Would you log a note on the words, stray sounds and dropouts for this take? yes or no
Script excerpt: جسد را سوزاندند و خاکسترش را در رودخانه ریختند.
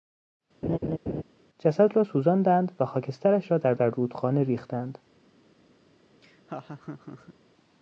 yes